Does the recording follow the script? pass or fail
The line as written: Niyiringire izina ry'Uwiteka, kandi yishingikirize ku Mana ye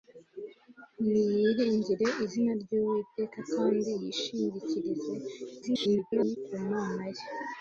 fail